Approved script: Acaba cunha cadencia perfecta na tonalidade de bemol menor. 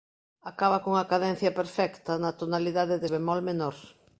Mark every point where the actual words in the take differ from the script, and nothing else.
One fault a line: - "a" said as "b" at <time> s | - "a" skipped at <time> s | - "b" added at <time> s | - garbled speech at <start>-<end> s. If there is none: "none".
none